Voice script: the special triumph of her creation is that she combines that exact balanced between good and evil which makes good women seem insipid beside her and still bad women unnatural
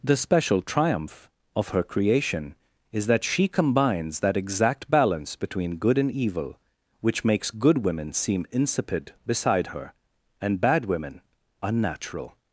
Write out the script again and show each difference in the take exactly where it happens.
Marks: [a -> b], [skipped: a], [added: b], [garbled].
the special triumph of her creation is that she combines that exact [balanced -> balance] between good and evil which makes good women seem insipid beside her and [skipped: still] bad women unnatural